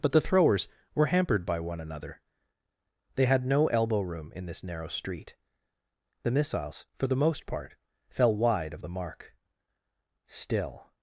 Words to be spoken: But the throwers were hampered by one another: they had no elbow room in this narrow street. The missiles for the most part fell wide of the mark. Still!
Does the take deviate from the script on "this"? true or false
false